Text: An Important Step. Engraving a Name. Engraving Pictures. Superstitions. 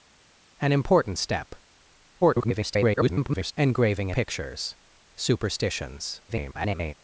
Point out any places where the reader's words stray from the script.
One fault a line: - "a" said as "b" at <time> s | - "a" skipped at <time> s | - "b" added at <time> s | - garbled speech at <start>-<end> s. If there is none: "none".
- garbled speech at 2.2-3.5 s
- "Name Engraving" skipped at 4.1 s
- garbled speech at 6.3-6.9 s